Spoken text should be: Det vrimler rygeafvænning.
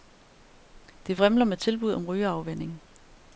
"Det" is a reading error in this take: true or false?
false